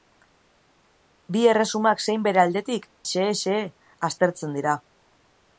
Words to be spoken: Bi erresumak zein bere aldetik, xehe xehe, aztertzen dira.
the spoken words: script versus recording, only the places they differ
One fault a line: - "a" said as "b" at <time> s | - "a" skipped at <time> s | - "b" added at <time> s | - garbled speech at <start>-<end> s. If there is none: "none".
none